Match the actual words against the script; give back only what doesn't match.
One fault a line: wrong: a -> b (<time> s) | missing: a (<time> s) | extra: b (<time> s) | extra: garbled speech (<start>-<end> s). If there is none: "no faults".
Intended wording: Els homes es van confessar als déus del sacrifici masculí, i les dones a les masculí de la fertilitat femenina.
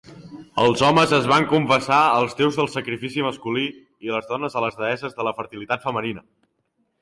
wrong: masculí -> deesses (4.9 s)